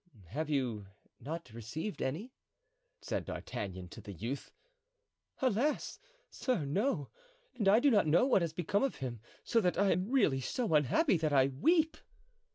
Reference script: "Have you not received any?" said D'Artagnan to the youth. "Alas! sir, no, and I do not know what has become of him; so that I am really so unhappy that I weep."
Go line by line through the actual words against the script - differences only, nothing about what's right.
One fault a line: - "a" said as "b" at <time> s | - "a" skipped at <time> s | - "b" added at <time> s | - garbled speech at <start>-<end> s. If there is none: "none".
none